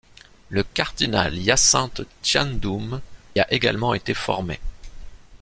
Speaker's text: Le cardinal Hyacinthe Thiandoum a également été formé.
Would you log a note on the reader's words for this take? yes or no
no